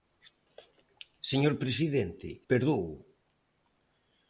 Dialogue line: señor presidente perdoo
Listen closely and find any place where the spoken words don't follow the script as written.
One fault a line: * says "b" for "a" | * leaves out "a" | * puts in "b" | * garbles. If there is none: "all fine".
all fine